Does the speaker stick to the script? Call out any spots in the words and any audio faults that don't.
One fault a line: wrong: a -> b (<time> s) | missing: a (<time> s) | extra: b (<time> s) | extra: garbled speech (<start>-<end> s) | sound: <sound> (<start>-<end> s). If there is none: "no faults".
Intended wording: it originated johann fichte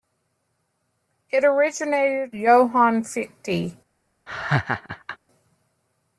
sound: laugh (4.3-5.2 s)